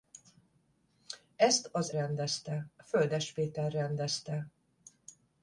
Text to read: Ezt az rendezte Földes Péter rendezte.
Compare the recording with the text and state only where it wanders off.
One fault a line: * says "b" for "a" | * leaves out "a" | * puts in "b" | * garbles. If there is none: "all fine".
all fine